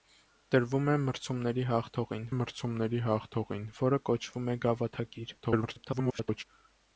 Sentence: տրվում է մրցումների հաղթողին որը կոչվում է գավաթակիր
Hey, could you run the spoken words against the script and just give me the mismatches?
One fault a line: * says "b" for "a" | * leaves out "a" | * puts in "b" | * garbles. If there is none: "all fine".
* puts in "մրցումների հաղթողին"
* garbles